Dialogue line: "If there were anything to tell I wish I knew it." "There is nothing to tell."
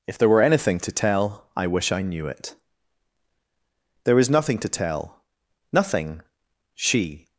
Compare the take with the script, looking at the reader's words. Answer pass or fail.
fail